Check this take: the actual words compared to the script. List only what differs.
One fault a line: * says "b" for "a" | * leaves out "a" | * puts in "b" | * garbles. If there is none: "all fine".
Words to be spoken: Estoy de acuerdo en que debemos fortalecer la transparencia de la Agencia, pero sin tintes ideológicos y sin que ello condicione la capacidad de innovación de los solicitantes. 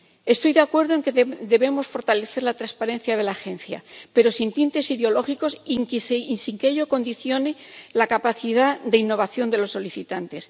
all fine